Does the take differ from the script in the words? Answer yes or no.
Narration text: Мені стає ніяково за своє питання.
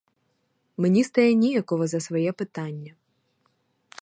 no